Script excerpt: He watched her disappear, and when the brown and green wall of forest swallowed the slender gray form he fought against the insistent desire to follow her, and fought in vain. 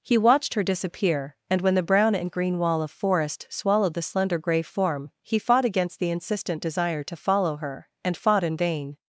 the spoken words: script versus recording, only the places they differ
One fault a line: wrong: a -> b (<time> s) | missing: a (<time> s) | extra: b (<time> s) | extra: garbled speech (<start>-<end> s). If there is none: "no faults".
no faults